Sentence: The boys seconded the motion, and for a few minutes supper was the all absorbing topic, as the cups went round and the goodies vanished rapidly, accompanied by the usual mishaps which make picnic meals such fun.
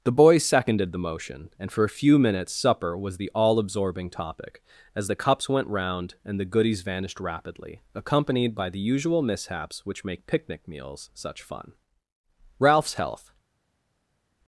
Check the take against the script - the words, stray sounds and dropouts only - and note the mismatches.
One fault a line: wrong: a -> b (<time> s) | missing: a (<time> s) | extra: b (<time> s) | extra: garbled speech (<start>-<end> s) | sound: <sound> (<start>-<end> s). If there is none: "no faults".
extra: Ralph's health (12.6 s)